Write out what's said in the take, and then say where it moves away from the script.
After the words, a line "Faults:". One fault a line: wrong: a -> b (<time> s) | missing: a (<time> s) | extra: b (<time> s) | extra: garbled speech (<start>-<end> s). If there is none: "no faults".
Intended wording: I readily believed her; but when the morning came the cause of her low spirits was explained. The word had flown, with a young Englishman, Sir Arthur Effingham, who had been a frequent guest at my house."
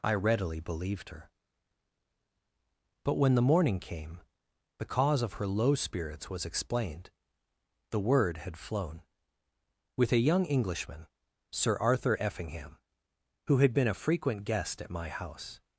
I readily believed her; but when the morning came the cause of her low spirits was explained. The word had flown, with a young Englishman, Sir Arthur Effingham, who had been a frequent guest at my house."
Faults:
no faults